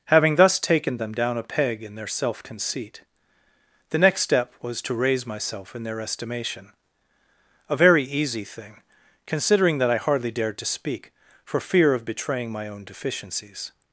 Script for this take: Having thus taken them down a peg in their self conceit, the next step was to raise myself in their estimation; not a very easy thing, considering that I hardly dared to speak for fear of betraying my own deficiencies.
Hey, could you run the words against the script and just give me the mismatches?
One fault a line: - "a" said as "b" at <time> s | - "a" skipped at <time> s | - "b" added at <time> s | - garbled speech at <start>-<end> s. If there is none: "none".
- "not" skipped at 6.7 s